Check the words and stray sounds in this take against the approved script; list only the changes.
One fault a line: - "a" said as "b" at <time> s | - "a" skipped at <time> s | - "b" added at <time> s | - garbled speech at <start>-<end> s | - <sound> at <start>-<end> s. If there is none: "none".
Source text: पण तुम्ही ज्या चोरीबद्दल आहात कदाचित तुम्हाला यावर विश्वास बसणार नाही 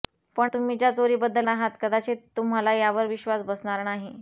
none